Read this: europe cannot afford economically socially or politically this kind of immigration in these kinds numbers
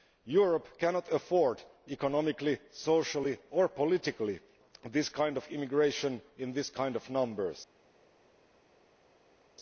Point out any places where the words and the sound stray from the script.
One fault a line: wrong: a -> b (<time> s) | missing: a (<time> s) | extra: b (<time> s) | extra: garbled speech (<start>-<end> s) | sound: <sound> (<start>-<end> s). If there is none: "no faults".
extra: of (7.0 s)